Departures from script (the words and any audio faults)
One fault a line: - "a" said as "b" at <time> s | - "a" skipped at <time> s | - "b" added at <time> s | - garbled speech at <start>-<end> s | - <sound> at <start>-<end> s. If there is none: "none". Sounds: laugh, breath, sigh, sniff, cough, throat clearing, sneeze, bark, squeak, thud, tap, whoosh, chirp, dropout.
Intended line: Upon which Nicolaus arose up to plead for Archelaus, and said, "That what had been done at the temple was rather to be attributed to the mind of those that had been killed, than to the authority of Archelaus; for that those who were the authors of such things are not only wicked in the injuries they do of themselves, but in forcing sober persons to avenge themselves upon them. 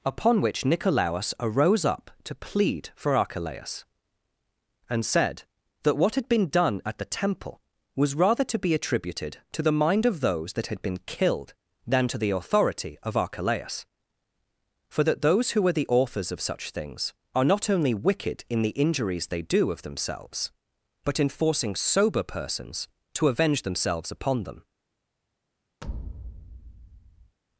- thud at 25.8-27.4 s